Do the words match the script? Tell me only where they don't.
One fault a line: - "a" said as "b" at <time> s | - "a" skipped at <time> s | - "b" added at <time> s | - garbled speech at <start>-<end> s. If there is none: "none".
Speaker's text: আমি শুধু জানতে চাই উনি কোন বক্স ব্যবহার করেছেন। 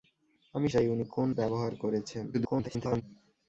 - "শুধু জানতে" skipped at 0.7 s
- "বক্স" skipped at 1.3 s
- garbled speech at 2.3-3.0 s